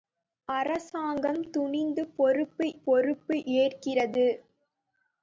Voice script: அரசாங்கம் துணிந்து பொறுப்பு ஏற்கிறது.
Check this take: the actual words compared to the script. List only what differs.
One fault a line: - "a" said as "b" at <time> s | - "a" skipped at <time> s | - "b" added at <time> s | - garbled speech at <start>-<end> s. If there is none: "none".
- "பொறுப்பு" added at 2.7 s